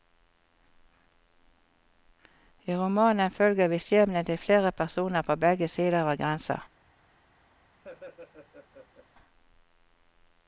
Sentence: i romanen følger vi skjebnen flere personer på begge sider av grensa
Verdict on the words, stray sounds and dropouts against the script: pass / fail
fail